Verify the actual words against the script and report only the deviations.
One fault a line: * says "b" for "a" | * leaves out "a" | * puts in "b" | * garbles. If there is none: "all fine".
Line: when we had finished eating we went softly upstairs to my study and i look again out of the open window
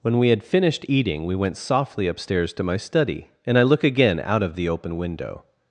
all fine